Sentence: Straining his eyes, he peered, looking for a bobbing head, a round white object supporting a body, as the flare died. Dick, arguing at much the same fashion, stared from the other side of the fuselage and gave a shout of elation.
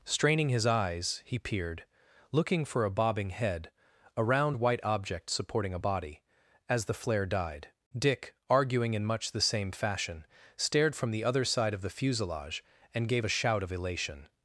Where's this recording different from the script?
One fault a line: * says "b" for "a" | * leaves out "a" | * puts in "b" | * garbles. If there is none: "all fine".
* says "in" for "at"